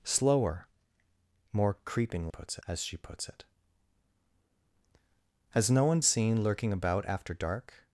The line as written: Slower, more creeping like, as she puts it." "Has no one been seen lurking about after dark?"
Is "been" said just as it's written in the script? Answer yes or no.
no